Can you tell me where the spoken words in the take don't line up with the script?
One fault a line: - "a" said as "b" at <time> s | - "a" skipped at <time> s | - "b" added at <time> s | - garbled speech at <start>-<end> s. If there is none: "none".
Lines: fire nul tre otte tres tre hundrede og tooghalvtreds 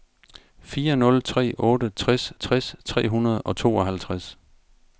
- "tres" added at 2.3 s